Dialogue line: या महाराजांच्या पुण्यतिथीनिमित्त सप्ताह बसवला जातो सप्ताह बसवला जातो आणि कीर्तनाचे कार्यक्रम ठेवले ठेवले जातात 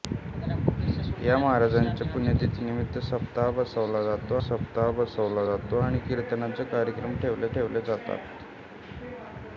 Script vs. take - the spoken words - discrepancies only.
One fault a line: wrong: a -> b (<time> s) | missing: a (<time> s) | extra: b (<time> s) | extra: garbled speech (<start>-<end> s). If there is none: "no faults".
no faults